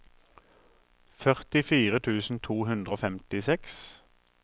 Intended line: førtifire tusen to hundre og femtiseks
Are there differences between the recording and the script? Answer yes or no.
no